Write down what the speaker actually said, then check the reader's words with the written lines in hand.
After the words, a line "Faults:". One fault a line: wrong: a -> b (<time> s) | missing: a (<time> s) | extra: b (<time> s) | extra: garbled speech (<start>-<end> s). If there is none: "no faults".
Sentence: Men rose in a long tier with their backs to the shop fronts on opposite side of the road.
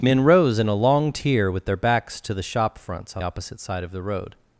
Men rose in a long tier with their backs to the shop fronts on opposite side of the road.
Faults:
no faults